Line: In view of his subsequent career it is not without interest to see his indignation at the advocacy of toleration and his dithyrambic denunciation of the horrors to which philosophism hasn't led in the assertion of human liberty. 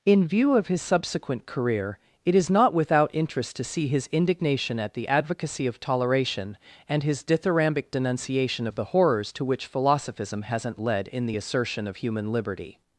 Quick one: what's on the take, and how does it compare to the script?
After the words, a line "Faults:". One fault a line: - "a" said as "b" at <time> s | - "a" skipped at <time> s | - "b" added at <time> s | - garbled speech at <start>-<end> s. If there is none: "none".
In view of his subsequent career it is not without interest to see his indignation at the advocacy of toleration and his dithyrambic denunciation of the horrors to which philosophism hasn't led in the assertion of human liberty.
Faults:
none